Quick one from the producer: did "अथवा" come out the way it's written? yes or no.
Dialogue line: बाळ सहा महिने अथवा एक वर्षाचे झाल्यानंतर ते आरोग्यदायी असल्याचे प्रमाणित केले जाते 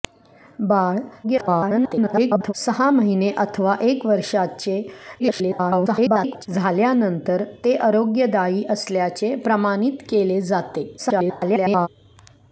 yes